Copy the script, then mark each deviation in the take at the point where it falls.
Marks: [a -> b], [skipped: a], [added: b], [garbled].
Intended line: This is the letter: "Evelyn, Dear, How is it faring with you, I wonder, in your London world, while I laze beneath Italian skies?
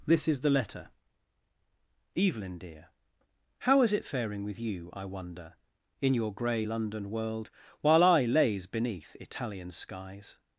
This is the letter: "Evelyn, Dear, How is it faring with you, I wonder, in your [added: grey] London world, while I laze beneath Italian skies?